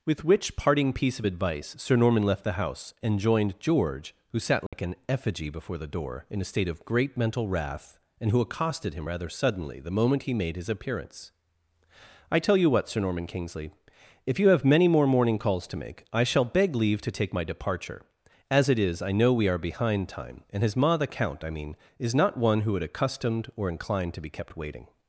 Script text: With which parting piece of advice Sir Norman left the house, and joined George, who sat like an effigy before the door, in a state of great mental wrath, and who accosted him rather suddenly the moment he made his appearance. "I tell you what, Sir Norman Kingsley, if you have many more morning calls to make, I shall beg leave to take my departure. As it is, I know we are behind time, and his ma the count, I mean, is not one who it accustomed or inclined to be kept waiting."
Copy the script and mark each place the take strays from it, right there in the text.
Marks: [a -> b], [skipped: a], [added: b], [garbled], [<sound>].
With which parting piece of advice Sir Norman left the house, and joined George, who sat like [dropout] an effigy before the door, in a state of great mental wrath, and who accosted him rather suddenly the moment he made his appearance. "I tell you what, Sir Norman Kingsley, if you have many more morning calls to make, I shall beg leave to take my departure. As it is, I know we are behind time, and his ma the count, I mean, is not one who [it -> would] accustomed or inclined to be kept waiting."